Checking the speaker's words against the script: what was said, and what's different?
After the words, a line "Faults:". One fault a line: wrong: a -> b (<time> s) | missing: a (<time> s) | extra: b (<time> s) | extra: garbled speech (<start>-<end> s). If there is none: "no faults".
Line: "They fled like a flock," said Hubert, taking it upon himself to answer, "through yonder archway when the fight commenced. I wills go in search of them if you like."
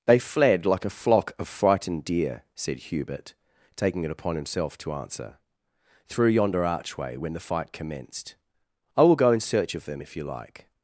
"They fled like a flock of frightened deer," said Hubert, taking it upon himself to answer, "through yonder archway when the fight commenced. I will go in search of them if you like."
Faults:
extra: of frightened deer (1.4 s)
wrong: wills -> will (9.0 s)